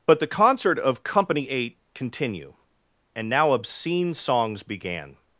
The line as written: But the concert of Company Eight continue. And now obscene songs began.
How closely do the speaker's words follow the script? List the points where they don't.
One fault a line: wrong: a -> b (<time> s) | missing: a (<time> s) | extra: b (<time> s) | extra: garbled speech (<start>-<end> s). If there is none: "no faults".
no faults